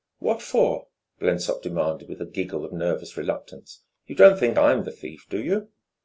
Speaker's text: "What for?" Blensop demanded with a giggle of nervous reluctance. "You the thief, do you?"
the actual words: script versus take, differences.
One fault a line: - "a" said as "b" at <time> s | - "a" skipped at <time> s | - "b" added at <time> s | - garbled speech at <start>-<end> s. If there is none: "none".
- "don't think I'm" added at 4.2 s